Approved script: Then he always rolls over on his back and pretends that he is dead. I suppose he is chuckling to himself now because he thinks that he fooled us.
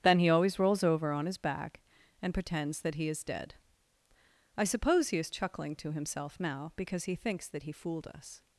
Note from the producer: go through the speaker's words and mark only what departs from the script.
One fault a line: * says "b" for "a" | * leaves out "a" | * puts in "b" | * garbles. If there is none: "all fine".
all fine